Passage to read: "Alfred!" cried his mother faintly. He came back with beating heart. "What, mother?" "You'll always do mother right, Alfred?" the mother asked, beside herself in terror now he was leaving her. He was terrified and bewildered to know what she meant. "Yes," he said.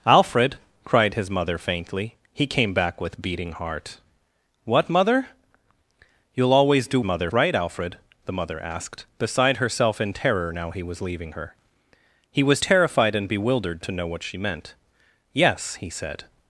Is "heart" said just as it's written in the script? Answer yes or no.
yes